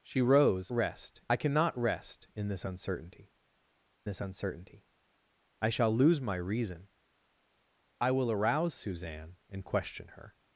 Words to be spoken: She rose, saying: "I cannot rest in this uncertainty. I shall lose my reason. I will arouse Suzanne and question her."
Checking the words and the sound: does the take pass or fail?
fail